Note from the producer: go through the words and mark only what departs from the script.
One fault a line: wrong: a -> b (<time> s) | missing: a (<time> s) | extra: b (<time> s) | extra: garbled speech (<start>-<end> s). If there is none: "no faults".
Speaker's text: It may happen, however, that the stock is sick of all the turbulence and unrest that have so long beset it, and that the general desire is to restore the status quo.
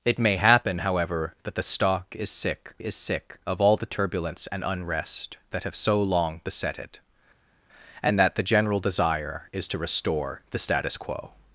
extra: is sick (2.8 s)